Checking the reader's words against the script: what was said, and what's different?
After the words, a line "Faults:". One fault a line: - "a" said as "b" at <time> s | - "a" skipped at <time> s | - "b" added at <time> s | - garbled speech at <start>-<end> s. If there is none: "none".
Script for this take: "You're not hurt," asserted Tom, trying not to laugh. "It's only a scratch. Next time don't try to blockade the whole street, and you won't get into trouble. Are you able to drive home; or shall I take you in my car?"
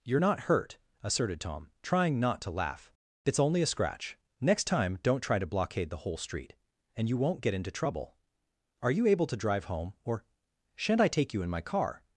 "You're not hurt," asserted Tom, trying not to laugh. "It's only a scratch. Next time don't try to blockade the whole street, and you won't get into trouble. Are you able to drive home; or shan't I take you in my car?"
Faults:
- "shall" said as "shan't" at 10.8 s